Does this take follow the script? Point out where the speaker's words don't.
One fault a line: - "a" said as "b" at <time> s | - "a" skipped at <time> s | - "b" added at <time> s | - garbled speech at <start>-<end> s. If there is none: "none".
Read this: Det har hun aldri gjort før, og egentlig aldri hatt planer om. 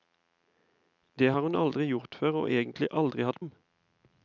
- "planer" skipped at 3.4 s